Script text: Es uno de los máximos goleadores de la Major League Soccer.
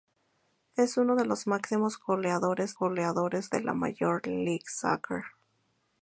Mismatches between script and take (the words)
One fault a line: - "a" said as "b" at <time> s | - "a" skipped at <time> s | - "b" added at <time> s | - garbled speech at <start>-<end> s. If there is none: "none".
- "goleadores" added at 2.7 s